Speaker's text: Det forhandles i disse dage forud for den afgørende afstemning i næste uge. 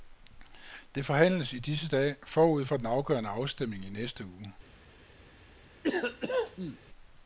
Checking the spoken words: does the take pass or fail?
pass